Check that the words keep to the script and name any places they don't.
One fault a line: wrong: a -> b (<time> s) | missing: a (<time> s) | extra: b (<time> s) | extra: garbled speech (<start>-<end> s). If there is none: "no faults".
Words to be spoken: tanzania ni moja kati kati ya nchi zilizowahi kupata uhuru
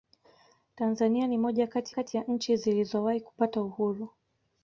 no faults